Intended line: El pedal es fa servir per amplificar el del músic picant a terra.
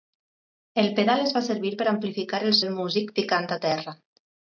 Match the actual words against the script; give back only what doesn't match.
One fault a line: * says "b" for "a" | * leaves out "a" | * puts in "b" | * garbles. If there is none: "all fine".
all fine